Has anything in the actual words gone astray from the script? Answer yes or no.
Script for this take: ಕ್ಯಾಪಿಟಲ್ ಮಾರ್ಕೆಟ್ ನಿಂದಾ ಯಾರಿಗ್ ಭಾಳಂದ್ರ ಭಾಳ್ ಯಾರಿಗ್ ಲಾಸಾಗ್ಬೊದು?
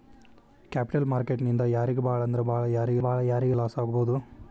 yes